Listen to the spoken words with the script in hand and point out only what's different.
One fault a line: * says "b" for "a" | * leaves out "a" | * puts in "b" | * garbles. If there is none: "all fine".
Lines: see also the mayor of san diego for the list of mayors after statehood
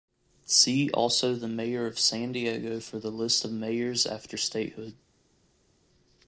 all fine